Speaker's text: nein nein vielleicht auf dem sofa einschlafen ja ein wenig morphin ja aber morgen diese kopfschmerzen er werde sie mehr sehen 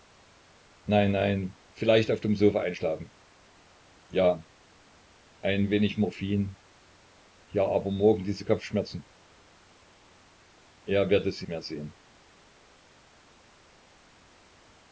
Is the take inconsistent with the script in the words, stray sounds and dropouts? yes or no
no